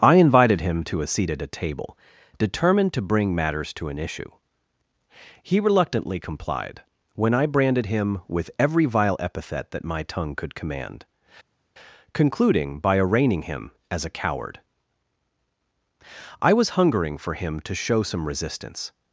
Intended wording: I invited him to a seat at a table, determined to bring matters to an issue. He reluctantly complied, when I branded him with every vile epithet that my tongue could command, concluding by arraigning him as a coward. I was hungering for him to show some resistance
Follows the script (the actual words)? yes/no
yes